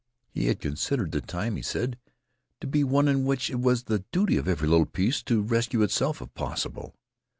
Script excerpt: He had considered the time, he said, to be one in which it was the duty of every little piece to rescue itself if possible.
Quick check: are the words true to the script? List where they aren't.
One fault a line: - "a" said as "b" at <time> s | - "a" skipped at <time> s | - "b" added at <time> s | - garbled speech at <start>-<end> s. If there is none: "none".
none